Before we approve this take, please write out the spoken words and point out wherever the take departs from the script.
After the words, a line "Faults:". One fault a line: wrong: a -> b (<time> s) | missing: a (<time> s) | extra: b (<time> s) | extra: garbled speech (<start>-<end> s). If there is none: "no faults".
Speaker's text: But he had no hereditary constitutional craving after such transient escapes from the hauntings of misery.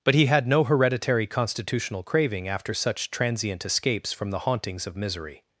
But he had no hereditary constitutional craving after such transient escapes from the hauntings of misery.
Faults:
no faults